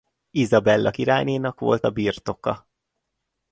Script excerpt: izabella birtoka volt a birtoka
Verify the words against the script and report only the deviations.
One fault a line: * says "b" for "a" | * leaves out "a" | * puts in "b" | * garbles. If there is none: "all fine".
* says "királynénak" for "birtoka"